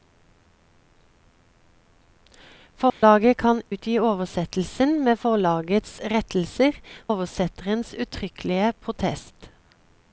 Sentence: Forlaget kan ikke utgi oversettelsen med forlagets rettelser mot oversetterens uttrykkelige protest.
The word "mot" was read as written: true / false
false